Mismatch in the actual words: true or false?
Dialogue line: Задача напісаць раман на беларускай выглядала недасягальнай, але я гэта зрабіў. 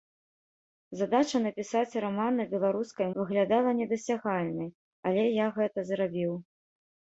false